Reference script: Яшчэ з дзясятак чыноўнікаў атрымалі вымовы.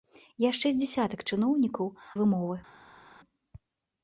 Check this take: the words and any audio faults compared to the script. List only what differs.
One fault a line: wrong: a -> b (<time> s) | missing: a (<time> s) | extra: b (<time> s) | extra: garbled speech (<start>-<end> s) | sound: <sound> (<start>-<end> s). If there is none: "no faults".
missing: атрымалі (1.9 s)